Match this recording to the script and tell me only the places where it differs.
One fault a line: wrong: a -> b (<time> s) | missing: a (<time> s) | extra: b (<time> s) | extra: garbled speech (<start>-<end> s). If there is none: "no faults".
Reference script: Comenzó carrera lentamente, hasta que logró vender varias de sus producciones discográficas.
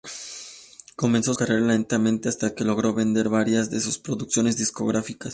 no faults